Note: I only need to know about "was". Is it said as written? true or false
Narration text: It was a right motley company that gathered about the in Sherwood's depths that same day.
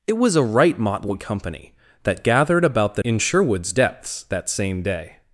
true